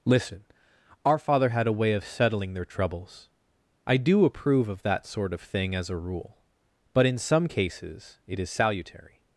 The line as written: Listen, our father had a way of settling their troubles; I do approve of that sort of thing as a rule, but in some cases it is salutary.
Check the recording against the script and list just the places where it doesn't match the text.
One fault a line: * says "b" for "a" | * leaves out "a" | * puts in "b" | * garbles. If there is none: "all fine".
all fine